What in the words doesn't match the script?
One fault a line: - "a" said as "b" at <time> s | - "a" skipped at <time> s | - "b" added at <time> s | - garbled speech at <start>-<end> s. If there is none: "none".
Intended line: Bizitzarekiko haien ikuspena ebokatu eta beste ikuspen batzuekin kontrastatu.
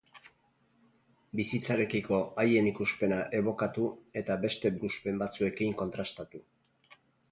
none